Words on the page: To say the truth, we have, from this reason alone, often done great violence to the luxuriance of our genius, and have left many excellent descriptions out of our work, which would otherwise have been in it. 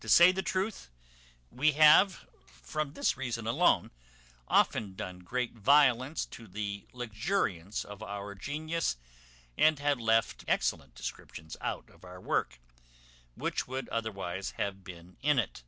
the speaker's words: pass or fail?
fail